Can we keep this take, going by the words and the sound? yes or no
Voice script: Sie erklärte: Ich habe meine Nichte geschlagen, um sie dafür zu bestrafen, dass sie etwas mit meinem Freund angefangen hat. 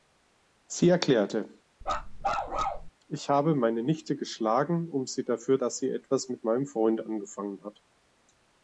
no